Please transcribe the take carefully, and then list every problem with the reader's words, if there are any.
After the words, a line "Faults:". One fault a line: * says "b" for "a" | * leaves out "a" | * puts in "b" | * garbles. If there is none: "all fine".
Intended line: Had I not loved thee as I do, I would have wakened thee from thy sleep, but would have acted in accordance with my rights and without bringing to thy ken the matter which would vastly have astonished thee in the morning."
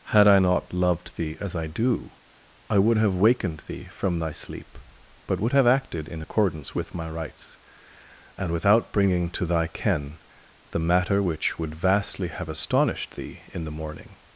Had I not loved thee as I do, I would have wakened thee from thy sleep, but would have acted in accordance with my rights and without bringing to thy ken the matter which would vastly have astonished thee in the morning."
Faults:
all fine